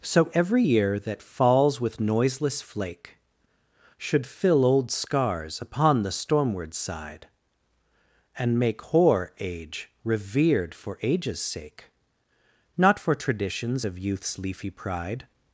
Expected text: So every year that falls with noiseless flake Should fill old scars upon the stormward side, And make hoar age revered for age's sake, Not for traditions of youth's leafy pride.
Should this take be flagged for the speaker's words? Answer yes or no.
no